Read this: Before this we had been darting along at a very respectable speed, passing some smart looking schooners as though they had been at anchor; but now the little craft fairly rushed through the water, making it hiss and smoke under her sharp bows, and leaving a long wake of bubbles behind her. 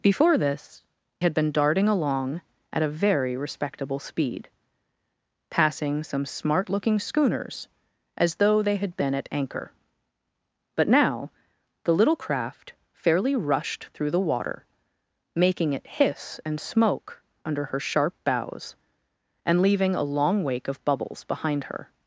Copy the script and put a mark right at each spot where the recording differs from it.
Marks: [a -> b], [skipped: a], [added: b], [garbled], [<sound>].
Before this [skipped: we] had been darting along at a very respectable speed, passing some smart looking schooners as though they had been at anchor; but now the little craft fairly rushed through the water, making it hiss and smoke under her sharp bows, and leaving a long wake of bubbles behind her.